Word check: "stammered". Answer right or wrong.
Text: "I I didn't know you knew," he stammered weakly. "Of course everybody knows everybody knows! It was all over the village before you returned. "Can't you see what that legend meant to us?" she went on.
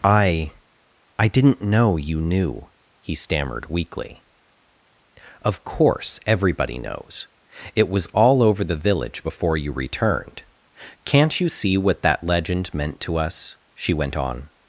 right